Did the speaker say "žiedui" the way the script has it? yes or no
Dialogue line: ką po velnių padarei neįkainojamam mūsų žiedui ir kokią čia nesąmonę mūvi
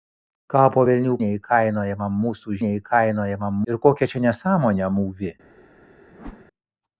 no